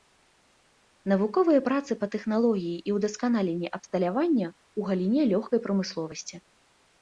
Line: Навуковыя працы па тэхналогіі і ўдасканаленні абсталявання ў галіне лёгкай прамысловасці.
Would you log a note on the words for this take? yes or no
no